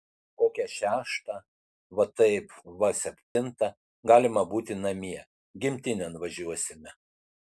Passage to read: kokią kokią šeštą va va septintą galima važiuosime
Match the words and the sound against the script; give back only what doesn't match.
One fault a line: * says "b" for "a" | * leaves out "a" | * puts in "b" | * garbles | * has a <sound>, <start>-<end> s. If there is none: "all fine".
* leaves out "kokią"
* puts in "taip"
* has a dropout, 3.2-3.4 s
* puts in "būti namie gimtinėn"